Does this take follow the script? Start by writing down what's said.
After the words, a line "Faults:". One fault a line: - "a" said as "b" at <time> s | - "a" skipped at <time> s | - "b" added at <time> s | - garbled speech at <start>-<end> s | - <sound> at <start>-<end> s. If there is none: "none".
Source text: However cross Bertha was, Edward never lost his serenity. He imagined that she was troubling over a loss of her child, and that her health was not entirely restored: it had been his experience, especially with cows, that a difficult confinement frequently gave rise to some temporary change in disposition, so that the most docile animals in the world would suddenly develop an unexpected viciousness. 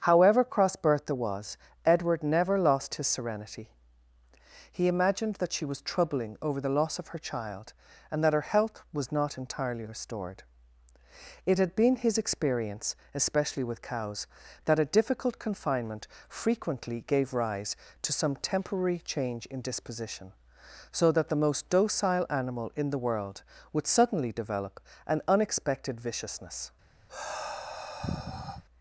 However cross Bertha was, Edward never lost his serenity. He imagined that she was troubling over the loss of her child, and that her health was not entirely restored: it had been his experience, especially with cows, that a difficult confinement frequently gave rise to some temporary change in disposition, so that the most docile animal in the world would suddenly develop an unexpected viciousness.
Faults:
- "a" said as "the" at 6.6 s
- "animals" said as "animal" at 22.3 s
- sigh at 27.1-28.6 s